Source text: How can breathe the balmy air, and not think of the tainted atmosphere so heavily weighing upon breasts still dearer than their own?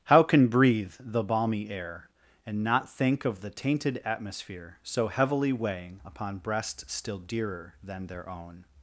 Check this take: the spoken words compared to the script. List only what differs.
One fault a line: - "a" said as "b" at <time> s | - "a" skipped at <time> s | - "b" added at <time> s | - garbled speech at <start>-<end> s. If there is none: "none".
none